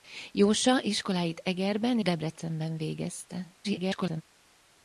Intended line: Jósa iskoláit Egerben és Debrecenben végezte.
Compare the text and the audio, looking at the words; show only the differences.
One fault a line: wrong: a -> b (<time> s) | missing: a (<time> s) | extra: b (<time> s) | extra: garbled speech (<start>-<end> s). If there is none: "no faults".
missing: és (2.0 s)
extra: garbled speech (3.6-4.2 s)